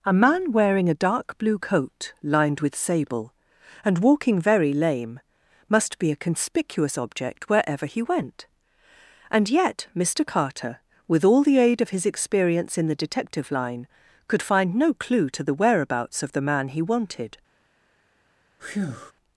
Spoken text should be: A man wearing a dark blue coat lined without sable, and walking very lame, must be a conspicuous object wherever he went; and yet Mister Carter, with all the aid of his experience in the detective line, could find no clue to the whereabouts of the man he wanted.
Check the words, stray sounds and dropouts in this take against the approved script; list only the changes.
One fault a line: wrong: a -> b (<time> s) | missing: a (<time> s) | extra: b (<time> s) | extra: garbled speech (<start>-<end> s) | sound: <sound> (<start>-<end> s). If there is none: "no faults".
wrong: without -> with (2.6 s)
sound: breath (18.6-19.1 s)